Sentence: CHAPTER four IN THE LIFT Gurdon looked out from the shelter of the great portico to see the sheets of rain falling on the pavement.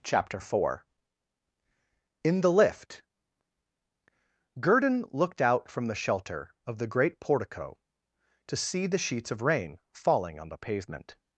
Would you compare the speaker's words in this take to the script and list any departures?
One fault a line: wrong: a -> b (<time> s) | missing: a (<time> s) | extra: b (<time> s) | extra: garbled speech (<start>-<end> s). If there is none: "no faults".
no faults